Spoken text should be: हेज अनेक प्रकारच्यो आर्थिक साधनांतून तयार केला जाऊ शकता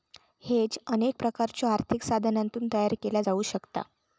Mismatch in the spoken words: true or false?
false